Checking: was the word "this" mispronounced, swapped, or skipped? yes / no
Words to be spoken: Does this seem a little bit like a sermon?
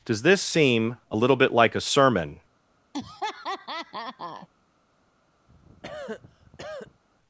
no